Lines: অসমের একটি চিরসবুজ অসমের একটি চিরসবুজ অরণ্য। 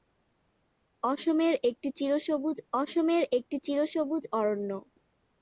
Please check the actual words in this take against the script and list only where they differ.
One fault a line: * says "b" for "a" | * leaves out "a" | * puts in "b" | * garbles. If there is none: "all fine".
all fine